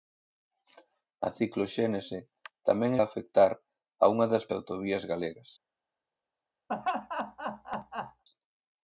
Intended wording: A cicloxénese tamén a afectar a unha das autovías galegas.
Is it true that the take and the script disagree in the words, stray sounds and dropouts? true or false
true